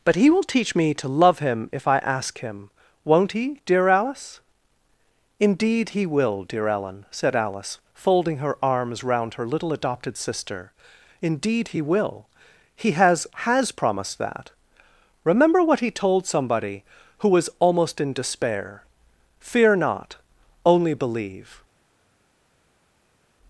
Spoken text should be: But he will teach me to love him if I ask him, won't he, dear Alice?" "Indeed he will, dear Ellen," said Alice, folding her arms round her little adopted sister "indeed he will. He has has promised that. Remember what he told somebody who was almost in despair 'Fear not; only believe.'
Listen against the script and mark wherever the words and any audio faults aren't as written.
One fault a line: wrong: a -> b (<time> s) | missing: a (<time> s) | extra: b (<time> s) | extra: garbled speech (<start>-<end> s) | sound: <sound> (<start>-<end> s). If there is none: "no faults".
no faults